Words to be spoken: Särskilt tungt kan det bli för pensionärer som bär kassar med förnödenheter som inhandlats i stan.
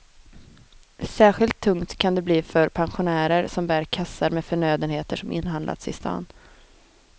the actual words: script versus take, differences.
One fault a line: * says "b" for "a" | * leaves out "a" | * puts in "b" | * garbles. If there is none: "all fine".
all fine